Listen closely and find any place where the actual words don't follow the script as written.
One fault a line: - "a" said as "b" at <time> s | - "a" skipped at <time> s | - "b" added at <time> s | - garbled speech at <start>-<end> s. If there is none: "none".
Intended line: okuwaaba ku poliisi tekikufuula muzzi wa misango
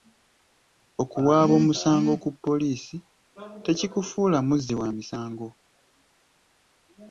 - "omusango" added at 1.6 s